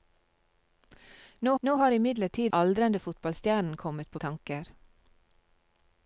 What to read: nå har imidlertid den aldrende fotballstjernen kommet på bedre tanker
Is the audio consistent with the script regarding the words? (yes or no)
no